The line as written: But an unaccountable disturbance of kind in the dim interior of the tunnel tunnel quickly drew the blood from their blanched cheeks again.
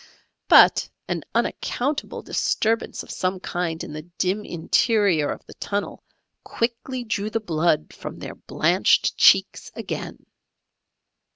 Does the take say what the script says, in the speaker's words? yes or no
no